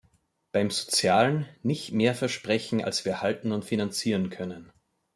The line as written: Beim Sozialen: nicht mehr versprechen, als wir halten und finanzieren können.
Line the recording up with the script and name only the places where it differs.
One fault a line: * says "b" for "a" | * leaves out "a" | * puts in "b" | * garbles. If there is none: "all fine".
all fine